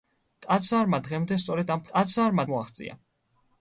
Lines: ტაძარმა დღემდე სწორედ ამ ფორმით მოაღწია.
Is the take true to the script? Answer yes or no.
no